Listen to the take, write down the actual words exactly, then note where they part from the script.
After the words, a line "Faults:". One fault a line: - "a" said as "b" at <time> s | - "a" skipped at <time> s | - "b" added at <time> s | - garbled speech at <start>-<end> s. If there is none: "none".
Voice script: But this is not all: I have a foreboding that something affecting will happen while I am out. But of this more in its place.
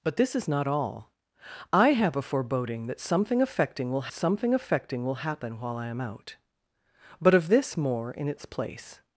But this is not all: I have a foreboding that something affecting will something affecting will happen while I am out. But of this more in its place.
Faults:
- "something affecting will" added at 4.1 s